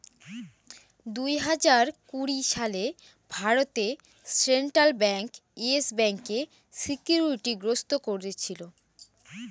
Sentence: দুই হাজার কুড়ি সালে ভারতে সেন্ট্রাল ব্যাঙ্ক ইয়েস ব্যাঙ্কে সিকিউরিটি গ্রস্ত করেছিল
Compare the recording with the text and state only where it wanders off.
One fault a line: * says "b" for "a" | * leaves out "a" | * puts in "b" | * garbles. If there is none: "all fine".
all fine